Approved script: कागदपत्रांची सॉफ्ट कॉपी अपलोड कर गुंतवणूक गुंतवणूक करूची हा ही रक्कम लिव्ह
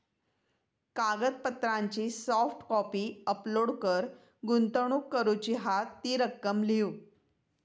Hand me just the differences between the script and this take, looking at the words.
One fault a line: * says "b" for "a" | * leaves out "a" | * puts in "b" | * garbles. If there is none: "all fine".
* leaves out "गुंतवणूक"
* says "ती" for "ही"